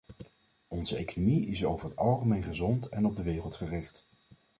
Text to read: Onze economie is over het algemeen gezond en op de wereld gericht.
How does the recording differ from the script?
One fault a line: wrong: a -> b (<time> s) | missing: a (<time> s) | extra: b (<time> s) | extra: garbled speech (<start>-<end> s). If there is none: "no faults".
no faults